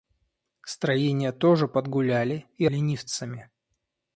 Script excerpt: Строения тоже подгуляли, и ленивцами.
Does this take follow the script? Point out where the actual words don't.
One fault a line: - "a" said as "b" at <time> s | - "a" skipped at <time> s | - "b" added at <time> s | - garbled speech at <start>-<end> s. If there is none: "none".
none